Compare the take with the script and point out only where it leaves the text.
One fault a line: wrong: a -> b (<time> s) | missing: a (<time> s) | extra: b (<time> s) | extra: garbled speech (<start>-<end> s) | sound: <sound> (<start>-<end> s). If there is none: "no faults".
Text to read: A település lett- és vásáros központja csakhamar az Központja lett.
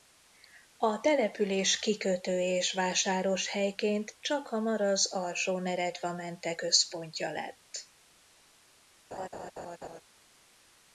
wrong: lett -> kikötő (1.8 s)
wrong: központja -> helyként (3.5 s)
extra: Alsó Neretvamente (5.1 s)
sound: laugh (9.1-10.0 s)